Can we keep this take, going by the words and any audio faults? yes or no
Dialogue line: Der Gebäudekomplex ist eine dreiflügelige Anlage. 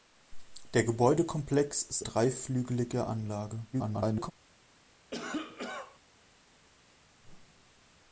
no